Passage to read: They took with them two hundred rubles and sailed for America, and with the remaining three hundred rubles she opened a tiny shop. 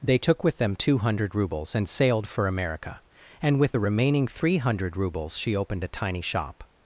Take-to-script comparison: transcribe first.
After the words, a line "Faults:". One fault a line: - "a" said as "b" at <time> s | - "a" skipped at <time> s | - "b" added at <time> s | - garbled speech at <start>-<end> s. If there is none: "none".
They took with them two hundred rubles and sailed for America, and with the remaining three hundred rubles she opened a tiny shop.
Faults:
none